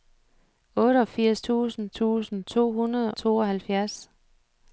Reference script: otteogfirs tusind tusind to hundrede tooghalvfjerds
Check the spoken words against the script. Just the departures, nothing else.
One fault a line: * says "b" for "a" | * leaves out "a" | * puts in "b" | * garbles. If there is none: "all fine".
all fine